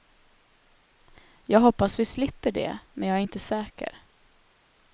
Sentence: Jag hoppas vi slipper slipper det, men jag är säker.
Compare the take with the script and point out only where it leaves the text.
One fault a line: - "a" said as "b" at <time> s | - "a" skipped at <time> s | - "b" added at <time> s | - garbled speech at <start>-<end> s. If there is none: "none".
- "slipper" skipped at 2.5 s
- "inte" added at 3.2 s